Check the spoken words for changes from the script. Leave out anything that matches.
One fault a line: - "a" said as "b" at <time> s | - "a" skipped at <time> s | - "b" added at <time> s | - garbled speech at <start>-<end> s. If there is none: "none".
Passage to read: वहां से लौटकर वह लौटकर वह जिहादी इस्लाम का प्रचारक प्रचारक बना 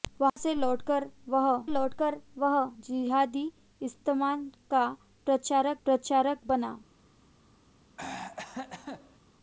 none